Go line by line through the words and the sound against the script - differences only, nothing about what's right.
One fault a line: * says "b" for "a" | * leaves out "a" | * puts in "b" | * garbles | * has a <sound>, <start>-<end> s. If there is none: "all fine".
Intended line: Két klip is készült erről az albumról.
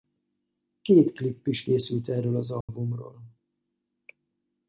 * has a dropout, 2.6-2.7 s